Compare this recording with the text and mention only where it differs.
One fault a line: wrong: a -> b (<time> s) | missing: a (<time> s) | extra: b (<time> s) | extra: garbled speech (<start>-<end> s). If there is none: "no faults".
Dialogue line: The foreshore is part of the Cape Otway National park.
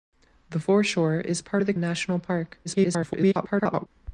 missing: Cape Otway (1.7 s)
extra: garbled speech (2.6-3.9 s)